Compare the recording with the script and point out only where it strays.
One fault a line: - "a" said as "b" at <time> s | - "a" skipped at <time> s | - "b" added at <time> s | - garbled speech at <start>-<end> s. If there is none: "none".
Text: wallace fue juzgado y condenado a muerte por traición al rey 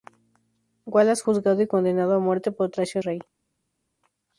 - "fue" skipped at 1.2 s
- "al" skipped at 3.0 s